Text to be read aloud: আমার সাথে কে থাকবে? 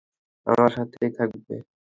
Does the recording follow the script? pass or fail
fail